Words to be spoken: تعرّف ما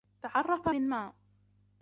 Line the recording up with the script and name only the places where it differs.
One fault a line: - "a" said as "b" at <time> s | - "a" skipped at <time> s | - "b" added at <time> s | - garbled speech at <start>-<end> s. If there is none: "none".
none